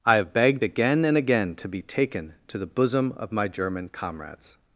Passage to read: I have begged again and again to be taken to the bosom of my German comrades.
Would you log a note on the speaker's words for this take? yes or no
no